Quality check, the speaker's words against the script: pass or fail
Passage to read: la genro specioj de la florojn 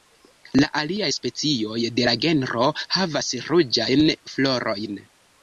fail